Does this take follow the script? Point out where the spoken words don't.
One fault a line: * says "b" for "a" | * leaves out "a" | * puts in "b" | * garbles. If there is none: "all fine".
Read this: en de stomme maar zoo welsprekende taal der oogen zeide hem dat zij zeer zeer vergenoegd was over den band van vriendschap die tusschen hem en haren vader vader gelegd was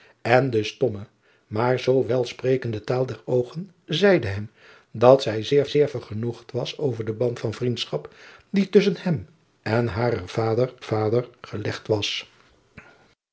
all fine